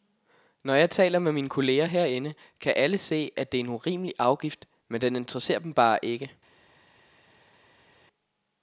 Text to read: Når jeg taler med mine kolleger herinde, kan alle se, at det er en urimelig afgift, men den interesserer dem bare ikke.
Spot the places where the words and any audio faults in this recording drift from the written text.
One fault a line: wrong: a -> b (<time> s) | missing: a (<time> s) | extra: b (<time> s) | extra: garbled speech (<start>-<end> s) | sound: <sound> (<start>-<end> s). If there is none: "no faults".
no faults